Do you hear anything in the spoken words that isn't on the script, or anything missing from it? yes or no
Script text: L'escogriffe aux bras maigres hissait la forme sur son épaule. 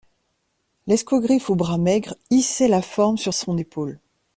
no